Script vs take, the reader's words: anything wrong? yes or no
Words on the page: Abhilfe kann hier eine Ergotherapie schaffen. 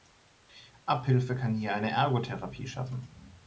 no